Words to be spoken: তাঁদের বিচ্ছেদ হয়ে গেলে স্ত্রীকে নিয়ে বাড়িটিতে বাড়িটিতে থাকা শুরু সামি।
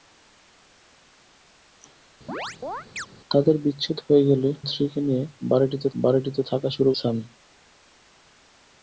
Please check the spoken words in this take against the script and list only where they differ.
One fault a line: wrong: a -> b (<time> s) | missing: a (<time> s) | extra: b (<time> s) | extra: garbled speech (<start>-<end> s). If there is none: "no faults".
no faults